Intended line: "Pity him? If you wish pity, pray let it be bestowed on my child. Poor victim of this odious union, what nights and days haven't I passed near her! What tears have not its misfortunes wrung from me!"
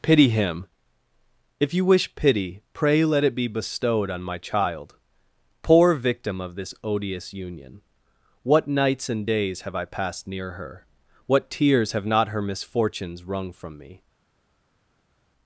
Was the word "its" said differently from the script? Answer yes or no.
yes